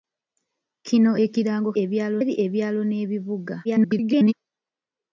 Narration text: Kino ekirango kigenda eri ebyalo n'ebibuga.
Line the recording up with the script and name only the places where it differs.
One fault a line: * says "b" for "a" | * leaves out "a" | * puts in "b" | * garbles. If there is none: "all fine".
* says "ebyalo" for "kigenda"
* garbles